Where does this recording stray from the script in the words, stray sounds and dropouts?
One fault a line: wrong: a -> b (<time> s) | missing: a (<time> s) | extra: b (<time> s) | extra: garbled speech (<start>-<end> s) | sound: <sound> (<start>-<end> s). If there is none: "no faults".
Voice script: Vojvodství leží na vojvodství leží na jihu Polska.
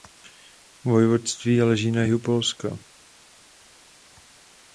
missing: vojvodství leží na (2.0 s)